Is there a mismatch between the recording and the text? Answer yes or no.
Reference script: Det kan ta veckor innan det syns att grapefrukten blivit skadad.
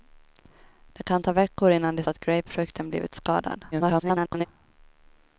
yes